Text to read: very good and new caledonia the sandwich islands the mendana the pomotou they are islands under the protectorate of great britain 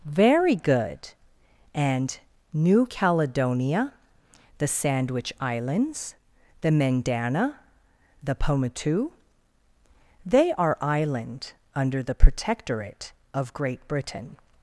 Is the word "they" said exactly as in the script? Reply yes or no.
yes